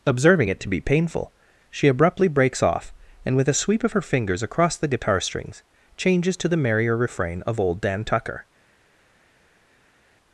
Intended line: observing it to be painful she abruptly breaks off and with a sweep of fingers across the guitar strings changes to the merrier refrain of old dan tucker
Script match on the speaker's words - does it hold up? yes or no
no